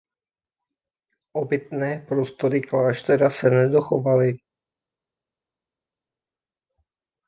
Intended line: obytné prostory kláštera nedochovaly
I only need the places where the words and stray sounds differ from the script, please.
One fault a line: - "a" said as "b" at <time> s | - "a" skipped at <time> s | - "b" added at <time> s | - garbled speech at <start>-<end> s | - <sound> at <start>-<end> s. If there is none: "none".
- "se" added at 3.3 s